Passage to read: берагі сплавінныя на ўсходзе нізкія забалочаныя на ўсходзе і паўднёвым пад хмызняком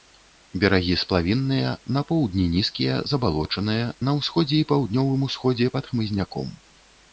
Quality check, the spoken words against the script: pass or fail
fail